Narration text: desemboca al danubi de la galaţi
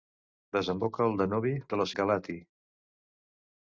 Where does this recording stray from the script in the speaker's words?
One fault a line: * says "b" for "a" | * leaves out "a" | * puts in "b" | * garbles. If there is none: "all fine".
all fine